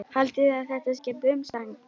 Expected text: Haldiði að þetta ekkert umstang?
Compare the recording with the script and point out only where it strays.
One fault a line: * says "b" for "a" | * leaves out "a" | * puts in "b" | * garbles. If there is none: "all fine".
all fine